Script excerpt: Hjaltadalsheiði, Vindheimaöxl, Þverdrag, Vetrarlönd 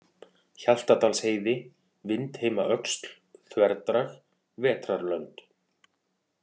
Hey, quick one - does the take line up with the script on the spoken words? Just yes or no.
yes